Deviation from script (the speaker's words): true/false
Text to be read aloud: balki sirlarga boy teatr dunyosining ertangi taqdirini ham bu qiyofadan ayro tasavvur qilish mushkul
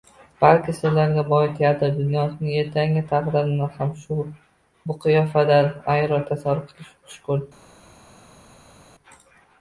false